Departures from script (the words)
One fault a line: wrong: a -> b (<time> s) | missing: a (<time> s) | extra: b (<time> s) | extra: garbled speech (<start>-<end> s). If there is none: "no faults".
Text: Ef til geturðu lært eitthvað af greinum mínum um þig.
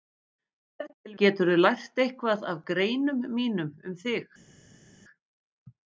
no faults